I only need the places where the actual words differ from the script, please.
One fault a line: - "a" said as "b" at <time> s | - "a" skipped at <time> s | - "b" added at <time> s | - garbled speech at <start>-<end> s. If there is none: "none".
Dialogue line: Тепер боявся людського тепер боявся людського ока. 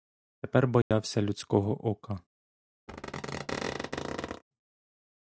- "тепер боявся людського" skipped at 1.9 s